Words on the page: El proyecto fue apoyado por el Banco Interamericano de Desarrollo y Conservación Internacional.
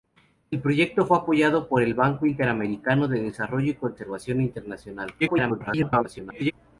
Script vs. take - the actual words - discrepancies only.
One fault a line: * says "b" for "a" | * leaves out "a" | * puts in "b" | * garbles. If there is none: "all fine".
* garbles